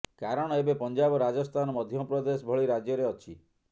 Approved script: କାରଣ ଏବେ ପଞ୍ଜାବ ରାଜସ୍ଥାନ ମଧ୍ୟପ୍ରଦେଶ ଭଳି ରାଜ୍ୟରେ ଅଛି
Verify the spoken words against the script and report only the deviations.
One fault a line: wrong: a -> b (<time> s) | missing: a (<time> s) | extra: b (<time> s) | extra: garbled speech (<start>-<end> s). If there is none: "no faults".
no faults